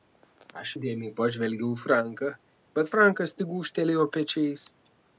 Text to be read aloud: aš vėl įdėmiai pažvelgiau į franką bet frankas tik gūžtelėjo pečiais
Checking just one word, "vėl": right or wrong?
wrong